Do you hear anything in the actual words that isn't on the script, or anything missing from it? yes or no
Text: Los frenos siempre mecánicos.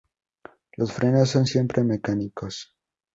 yes